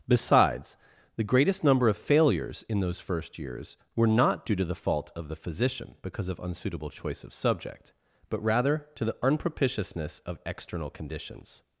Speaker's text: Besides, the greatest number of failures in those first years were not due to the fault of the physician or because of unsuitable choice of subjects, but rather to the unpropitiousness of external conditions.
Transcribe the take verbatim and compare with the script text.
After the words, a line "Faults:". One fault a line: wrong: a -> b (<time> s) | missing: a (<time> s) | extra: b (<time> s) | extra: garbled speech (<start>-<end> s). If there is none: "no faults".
Besides, the greatest number of failures in those first years were not due to the fault of the physician because of unsuitable choice of subject, but rather to the unpropitiousness of external conditions.
Faults:
missing: or (6.0 s)
wrong: subjects -> subject (7.3 s)